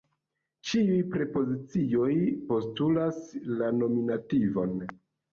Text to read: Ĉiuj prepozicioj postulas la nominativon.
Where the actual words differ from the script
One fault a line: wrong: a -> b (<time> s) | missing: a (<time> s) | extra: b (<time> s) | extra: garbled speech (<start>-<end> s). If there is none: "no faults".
no faults